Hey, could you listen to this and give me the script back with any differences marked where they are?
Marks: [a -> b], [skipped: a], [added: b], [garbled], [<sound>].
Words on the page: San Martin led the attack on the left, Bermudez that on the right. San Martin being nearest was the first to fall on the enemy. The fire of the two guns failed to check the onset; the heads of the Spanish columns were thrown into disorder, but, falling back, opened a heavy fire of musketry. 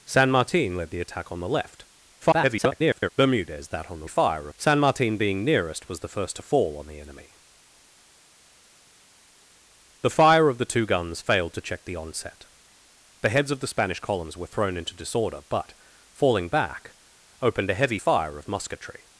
San Martin led the attack on the left, [garbled] Bermudez that on the [right. -> fire] San Martin being nearest was the first to fall on the enemy. The fire of the two guns failed to check the onset; the heads of the Spanish columns were thrown into disorder, but, falling back, opened a heavy fire of musketry.